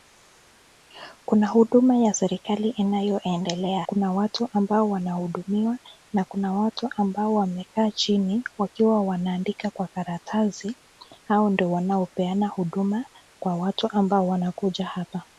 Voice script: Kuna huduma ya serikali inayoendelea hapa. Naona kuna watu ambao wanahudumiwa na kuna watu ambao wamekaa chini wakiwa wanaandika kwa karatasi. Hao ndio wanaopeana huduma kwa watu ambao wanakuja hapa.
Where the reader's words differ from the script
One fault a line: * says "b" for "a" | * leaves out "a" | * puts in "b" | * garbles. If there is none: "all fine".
* leaves out "hapa Naona"